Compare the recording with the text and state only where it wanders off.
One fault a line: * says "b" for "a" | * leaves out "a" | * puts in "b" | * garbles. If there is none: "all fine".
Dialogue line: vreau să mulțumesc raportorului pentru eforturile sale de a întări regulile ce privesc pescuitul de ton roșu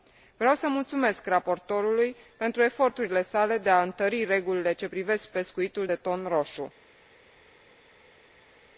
all fine